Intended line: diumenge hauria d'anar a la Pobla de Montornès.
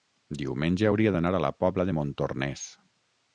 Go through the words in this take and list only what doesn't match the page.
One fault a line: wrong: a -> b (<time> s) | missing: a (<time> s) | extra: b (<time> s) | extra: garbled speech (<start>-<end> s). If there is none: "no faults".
no faults